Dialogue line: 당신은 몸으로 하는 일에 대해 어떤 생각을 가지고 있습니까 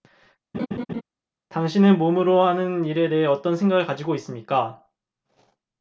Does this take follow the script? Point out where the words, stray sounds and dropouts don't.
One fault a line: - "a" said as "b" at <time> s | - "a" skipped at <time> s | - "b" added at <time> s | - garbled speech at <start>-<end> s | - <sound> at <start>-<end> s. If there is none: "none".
- laugh at 0.5-1.0 s